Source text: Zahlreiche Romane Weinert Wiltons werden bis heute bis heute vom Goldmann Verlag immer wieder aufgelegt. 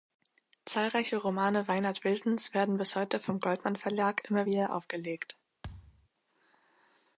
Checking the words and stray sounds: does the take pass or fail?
fail